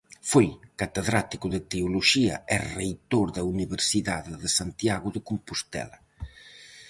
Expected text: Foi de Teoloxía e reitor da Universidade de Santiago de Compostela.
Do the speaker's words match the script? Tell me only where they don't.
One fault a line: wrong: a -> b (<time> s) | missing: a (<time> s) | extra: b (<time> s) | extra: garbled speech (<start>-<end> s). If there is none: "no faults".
extra: catedrático (0.8 s)